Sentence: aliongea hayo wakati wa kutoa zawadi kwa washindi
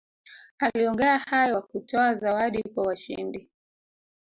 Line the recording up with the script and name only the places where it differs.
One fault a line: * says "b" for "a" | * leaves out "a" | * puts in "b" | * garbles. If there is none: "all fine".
* leaves out "wakati"